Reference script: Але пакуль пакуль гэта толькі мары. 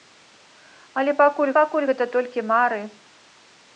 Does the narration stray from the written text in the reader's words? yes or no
no